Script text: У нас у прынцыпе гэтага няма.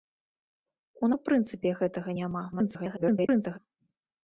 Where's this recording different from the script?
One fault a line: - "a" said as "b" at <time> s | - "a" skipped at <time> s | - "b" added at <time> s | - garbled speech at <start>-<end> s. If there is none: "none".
- "нас" skipped at 1.1 s
- garbled speech at 2.5-3.6 s